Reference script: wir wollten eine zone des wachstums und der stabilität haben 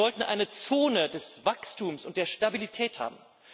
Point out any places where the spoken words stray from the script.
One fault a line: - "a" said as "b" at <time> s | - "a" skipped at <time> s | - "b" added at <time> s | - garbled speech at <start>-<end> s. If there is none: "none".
none